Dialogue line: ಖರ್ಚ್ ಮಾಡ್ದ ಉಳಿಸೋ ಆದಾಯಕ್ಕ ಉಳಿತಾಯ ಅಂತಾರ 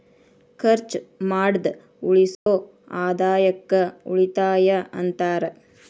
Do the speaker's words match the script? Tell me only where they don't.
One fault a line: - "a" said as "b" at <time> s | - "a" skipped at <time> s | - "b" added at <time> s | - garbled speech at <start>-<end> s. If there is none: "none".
none